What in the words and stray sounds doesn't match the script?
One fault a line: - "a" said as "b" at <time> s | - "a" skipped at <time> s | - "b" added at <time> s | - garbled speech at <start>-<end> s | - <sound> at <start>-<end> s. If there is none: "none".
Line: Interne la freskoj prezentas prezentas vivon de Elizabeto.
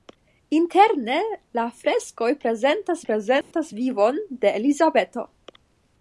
- dropout at 3.4-3.5 s